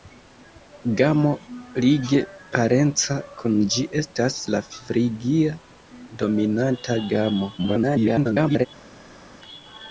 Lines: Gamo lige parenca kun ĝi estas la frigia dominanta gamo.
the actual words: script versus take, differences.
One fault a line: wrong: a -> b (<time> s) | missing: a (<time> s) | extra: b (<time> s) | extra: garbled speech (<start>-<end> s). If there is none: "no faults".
extra: garbled speech (7.6-8.7 s)